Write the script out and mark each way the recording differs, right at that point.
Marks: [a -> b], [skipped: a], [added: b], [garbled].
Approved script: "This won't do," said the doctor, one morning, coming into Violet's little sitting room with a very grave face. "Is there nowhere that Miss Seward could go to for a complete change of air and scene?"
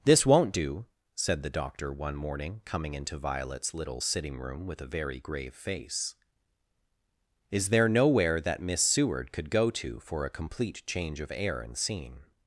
"This won't do," said the doctor, one morning, coming into Violet's little sitting room with a very grave face. "Is there nowhere that Miss Seward could go to for a complete change of air and scene?"